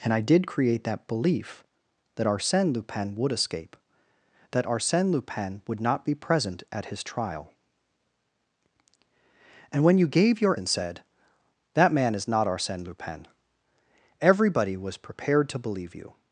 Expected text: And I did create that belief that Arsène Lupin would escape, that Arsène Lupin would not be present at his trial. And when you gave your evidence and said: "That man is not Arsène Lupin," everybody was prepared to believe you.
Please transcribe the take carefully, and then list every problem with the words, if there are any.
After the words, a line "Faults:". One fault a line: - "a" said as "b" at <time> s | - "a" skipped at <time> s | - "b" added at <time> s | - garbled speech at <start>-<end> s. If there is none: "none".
And I did create that belief that Arsène Lupin would escape, that Arsène Lupin would not be present at his trial. And when you gave your and said: "That man is not Arsène Lupin," everybody was prepared to believe you.
Faults:
- "evidence" skipped at 10.6 s